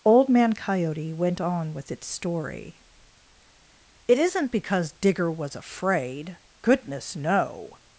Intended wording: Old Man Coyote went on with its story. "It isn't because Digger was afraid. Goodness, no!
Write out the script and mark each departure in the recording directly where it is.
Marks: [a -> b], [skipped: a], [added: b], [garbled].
Old Man Coyote went on with its story. "It isn't because Digger was afraid. Goodness, no!